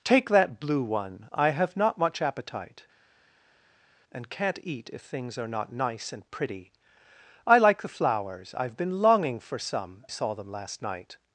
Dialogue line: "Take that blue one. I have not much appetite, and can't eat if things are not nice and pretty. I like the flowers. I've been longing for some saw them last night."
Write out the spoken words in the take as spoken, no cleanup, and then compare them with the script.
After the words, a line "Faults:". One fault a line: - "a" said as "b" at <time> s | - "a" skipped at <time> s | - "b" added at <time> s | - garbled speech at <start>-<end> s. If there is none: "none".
"Take that blue one. I have not much appetite, and can't eat if things are not nice and pretty. I like the flowers. I've been longing for some saw them last night."
Faults:
none